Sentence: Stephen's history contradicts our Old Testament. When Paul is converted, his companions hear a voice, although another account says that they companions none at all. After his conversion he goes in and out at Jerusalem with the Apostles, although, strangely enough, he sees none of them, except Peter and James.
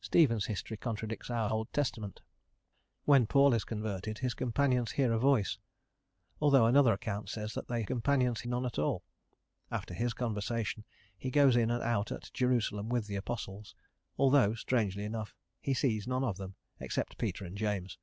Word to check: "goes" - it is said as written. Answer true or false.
true